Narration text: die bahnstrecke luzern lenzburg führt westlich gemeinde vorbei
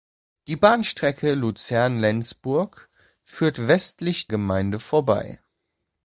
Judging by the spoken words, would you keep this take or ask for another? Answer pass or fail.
pass